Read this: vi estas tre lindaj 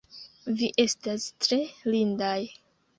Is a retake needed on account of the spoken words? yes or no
no